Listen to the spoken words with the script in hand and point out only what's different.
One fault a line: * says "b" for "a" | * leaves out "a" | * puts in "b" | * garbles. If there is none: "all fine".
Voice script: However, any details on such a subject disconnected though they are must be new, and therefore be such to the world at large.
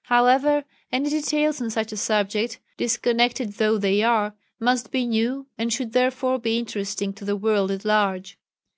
* puts in "should"
* says "interesting" for "such"